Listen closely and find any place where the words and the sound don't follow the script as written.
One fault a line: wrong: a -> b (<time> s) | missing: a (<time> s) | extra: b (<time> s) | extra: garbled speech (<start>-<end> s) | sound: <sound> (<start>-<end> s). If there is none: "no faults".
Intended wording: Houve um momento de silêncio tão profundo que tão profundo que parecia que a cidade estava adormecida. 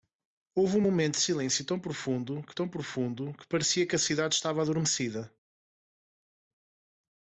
no faults